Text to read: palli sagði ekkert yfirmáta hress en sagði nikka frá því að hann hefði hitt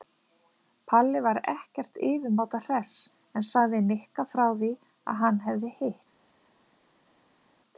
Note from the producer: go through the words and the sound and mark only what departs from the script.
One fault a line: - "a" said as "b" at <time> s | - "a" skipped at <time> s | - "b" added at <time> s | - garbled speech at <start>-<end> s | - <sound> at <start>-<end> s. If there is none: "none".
- "sagði" said as "var" at 1.2 s